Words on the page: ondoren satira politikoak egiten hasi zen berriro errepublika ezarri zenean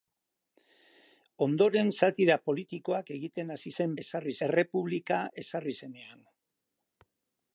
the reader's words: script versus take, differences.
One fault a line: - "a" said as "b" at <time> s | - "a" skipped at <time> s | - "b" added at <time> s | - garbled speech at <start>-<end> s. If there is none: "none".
- "berriro" said as "ezarri" at 4.1 s